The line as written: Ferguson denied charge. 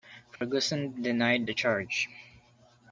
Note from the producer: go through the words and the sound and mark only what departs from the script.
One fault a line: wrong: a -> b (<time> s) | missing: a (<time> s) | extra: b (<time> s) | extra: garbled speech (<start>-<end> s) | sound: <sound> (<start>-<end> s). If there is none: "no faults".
sound: dropout (0.4-0.4 s)
extra: the (1.4 s)